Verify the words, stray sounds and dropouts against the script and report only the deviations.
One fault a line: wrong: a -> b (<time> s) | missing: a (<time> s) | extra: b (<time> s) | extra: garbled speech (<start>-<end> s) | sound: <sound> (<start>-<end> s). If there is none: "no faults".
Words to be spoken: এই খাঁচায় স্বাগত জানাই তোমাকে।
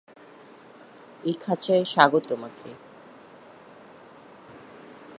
missing: জানাই (2.2 s)